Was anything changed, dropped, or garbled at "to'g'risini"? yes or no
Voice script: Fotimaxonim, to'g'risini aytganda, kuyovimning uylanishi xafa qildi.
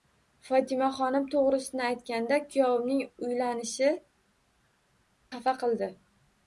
no